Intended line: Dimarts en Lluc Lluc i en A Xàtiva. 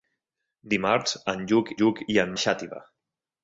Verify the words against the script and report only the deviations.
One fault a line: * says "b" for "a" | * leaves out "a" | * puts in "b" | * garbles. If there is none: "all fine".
all fine